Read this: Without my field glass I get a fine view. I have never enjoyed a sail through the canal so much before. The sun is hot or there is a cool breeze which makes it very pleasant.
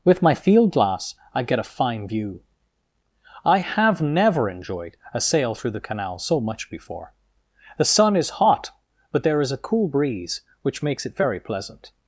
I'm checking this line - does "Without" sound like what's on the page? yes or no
no